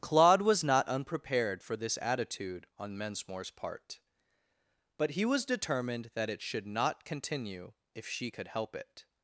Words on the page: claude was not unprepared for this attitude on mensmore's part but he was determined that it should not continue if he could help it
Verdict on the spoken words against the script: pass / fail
fail